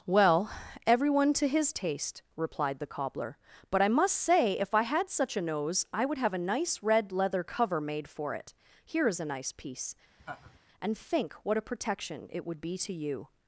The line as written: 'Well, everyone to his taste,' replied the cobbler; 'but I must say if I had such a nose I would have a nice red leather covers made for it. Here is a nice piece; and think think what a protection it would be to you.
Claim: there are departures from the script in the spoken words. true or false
true